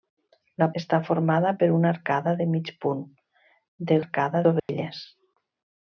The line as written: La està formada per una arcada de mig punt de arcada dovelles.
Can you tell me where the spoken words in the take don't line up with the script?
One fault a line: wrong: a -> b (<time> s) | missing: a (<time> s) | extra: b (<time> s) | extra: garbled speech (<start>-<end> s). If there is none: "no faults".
no faults